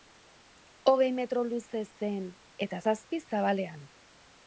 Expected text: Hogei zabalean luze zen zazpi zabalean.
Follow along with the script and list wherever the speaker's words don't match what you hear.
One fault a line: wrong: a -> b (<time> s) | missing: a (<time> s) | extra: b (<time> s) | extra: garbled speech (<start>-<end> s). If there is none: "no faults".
wrong: zabalean -> metro (1.2 s)
extra: eta (2.7 s)